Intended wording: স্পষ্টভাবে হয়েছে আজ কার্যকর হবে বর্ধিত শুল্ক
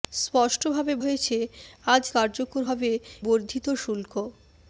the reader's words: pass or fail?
pass